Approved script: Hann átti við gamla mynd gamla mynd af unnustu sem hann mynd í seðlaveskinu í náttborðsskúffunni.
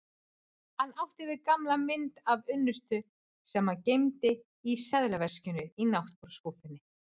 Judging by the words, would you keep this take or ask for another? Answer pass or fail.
fail